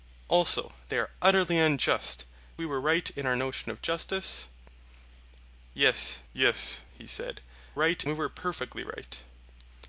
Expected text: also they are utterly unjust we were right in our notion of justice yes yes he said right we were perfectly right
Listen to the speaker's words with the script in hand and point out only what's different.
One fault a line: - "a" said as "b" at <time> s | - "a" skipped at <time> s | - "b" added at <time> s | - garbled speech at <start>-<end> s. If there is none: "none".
none